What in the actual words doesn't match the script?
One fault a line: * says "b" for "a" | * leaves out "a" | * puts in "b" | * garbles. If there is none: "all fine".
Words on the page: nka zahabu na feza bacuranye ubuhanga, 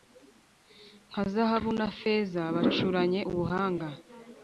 all fine